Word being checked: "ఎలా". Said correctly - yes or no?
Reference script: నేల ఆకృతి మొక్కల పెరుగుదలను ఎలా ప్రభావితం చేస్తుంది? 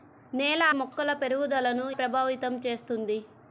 no